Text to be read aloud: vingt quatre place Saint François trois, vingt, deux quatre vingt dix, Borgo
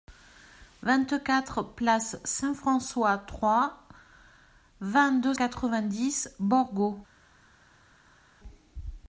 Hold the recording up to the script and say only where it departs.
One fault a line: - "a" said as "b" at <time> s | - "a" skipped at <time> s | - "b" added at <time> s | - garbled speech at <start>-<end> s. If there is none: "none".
none